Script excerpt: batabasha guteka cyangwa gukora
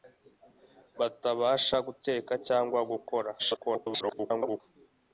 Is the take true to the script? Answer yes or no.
no